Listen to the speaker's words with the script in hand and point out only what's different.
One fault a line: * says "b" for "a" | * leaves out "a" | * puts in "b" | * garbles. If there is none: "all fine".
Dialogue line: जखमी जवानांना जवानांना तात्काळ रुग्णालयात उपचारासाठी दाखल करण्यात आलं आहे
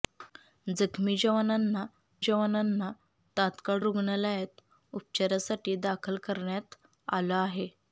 all fine